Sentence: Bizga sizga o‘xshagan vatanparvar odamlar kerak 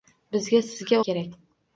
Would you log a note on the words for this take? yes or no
yes